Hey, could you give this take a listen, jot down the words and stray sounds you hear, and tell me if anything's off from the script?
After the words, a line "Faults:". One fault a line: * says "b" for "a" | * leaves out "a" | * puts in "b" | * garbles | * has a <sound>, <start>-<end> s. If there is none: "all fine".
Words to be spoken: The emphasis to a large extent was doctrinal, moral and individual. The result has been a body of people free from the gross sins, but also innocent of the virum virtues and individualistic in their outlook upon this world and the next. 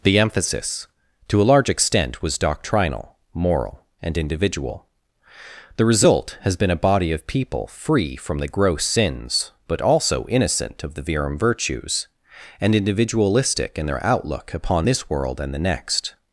The emphasis to a large extent was doctrinal, moral and individual. The result has been a body of people free from the gross sins, but also innocent of the virum virtues and individualistic in their outlook upon this world and the next.
Faults:
all fine